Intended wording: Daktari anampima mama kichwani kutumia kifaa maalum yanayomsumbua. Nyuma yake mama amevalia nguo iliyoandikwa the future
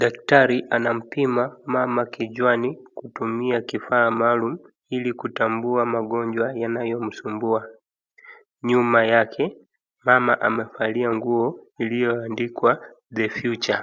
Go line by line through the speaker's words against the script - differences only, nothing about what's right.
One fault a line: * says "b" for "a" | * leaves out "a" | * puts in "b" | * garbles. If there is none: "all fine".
* puts in "ili kutambua magonjwa"